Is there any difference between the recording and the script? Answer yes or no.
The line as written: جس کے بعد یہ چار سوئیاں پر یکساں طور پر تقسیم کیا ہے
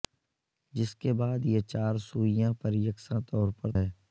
yes